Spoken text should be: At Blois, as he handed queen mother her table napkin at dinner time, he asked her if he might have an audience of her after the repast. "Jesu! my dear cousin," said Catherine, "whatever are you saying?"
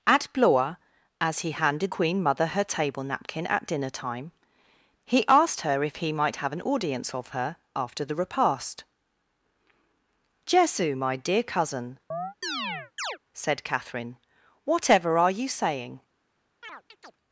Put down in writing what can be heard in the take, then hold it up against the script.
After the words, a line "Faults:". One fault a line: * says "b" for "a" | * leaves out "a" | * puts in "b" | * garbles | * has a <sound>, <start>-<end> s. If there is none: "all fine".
At Blois, as he handed queen mother her table napkin at dinner time, he asked her if he might have an audience of her after the repast. "Jesu! my dear cousin," said Catherine, "whatever are you saying?"
Faults:
* has a chirp, 12.1-13.2 s
* has a chirp, 16.6-17.2 s